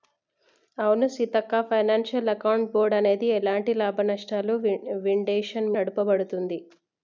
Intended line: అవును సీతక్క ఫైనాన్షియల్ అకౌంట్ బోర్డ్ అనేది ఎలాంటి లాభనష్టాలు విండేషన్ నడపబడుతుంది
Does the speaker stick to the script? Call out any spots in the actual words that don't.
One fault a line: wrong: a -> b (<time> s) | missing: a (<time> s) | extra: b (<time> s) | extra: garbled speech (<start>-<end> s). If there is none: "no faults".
no faults